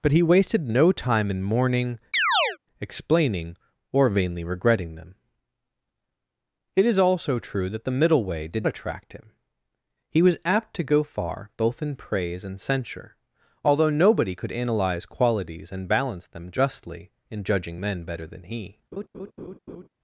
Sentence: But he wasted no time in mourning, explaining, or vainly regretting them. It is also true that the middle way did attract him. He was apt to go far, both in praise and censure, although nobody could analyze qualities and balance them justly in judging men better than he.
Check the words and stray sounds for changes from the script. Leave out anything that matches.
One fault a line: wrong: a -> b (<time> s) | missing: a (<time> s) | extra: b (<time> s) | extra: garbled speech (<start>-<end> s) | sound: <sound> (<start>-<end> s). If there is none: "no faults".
sound: chirp (2.1-2.6 s)
sound: laugh (18.9-19.9 s)